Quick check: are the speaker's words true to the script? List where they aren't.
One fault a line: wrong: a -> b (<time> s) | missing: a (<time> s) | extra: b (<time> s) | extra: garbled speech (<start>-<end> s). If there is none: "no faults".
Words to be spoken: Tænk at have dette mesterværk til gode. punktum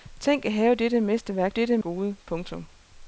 wrong: til -> dette (1.5 s)